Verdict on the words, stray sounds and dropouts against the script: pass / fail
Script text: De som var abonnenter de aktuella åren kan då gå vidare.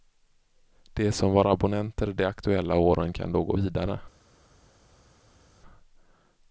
pass